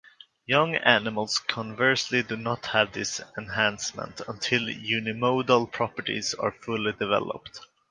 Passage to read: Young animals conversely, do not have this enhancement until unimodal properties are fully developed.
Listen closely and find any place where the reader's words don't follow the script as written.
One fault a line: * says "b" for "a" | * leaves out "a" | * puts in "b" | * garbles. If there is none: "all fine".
all fine